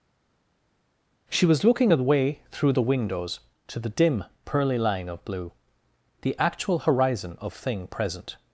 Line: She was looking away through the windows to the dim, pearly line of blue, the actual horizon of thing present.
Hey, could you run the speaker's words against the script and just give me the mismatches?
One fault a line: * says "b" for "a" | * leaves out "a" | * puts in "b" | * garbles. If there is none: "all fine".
all fine